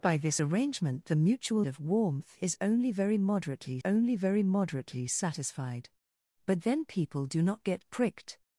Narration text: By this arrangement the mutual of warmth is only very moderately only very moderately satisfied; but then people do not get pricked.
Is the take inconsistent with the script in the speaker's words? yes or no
no